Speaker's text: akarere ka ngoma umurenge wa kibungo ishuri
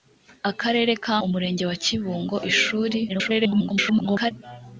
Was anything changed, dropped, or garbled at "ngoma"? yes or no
yes